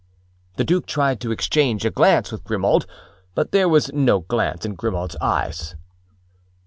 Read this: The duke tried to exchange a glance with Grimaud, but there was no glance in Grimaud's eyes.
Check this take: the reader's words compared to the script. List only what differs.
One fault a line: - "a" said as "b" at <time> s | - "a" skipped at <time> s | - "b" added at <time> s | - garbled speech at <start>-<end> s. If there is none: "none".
none